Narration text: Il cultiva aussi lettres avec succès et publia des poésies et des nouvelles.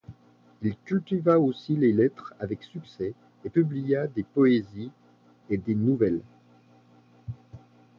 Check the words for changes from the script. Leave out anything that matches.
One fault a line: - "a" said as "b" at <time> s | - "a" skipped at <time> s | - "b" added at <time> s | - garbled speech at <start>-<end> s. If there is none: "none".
- "les" added at 1.8 s